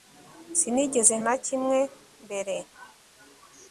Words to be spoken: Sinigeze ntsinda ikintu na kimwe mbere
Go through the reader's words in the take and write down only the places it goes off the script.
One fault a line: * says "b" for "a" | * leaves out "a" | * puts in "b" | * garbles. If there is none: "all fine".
* leaves out "ntsinda ikintu"